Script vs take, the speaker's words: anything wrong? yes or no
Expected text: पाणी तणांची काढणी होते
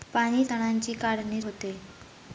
no